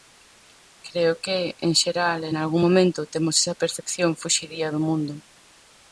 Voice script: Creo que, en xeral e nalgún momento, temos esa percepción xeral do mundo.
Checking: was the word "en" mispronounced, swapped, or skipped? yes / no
no